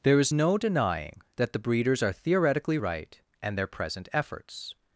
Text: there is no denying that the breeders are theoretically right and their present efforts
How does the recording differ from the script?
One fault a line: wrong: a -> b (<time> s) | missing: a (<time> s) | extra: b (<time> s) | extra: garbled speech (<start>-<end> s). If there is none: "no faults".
no faults